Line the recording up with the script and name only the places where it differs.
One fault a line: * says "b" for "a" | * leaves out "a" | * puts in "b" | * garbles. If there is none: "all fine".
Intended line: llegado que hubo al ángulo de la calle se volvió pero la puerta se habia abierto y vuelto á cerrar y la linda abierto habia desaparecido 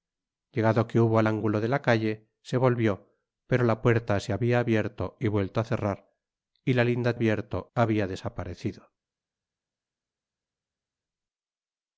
all fine